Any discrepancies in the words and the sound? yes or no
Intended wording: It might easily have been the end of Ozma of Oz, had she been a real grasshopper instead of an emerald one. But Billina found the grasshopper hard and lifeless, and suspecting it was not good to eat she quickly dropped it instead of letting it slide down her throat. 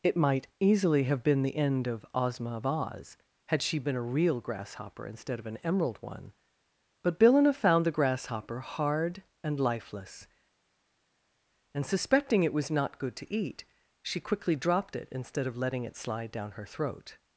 no